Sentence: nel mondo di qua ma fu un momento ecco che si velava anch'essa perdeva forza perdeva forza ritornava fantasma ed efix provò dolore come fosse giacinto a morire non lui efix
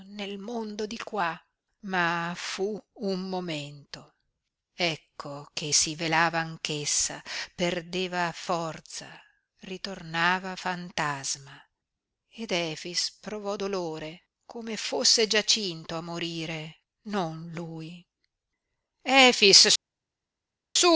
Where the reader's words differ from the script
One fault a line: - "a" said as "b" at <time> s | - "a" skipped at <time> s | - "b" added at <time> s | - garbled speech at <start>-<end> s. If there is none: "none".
- "perdeva forza" skipped at 9.1 s